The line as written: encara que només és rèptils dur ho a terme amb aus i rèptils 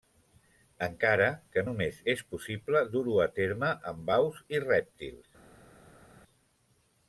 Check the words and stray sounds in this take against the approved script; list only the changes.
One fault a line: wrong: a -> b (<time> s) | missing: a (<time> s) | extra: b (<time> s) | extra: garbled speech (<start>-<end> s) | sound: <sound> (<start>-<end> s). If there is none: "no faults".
wrong: rèptils -> possible (2.3 s)